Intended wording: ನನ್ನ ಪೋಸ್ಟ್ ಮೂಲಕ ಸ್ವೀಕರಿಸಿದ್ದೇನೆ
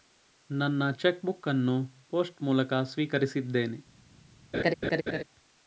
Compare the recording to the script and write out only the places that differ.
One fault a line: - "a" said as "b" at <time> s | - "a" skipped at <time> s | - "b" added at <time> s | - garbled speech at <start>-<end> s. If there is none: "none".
- "ಚೆಕ್ ಬುಕ್ ಅನ್ನು" added at 1.0 s